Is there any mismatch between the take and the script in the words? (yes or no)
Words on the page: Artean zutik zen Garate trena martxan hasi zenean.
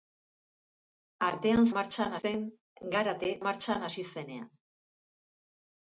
yes